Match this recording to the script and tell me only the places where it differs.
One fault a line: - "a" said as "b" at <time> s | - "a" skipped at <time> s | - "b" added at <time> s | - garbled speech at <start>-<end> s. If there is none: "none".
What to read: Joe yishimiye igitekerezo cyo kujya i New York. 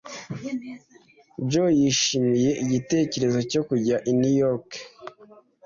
none